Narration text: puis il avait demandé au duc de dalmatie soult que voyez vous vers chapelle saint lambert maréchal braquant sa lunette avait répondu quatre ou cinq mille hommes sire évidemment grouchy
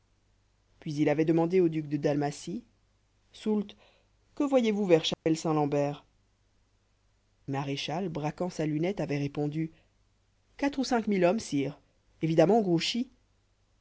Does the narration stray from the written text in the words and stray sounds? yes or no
yes